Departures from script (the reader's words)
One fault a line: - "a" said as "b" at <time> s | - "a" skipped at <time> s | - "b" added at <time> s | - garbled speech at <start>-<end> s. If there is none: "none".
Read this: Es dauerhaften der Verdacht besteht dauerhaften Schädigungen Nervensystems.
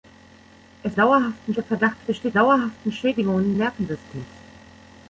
none